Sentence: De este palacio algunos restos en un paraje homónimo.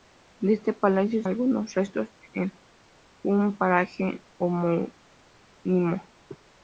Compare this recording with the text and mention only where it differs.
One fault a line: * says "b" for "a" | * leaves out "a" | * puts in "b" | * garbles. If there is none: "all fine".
all fine